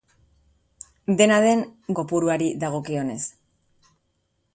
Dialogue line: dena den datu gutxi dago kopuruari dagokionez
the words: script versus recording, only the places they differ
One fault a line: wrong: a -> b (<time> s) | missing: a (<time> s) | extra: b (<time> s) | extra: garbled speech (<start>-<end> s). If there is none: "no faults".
missing: datu gutxi dago (1.6 s)